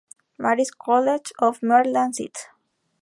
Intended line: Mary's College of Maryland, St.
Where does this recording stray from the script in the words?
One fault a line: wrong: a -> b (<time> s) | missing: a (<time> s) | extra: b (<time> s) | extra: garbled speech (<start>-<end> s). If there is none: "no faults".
no faults